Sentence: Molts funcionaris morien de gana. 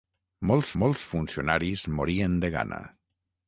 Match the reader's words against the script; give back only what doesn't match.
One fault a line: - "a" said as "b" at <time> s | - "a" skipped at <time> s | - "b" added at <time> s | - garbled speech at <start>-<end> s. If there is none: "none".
- "molts" added at 0.8 s